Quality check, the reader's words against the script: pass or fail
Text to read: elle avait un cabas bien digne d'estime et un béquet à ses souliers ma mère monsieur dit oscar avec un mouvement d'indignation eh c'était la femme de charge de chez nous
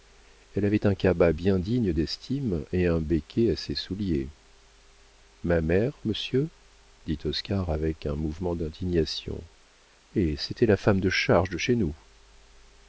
pass